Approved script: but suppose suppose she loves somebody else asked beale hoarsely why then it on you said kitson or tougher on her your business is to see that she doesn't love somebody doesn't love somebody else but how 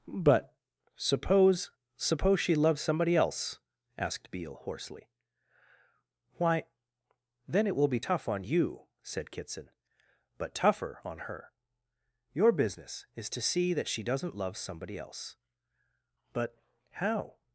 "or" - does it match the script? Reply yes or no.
no